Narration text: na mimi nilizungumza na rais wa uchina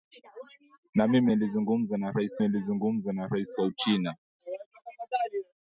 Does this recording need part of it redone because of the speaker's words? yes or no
yes